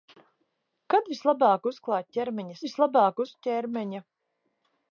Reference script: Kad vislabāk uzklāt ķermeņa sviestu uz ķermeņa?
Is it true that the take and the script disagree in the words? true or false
true